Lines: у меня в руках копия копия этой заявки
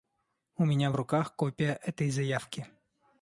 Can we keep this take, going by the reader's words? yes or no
no